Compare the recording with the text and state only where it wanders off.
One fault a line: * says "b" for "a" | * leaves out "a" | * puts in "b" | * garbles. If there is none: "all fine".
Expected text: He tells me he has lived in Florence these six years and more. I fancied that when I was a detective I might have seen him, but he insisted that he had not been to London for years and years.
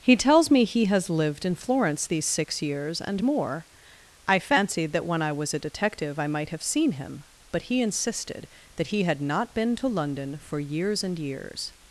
all fine